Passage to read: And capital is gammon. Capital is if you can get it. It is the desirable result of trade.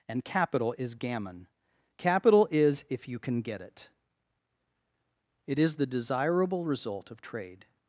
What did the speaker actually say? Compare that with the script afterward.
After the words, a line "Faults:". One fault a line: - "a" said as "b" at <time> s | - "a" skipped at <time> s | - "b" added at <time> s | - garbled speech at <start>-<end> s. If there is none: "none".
And capital is gammon. Capital is if you can get it. It is the desirable result of trade.
Faults:
none